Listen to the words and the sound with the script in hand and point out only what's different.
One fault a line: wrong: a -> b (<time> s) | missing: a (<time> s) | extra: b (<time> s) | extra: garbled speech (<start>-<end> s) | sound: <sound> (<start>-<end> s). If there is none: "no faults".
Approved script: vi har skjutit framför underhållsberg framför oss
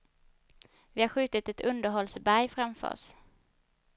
wrong: framför -> ett (1.5 s)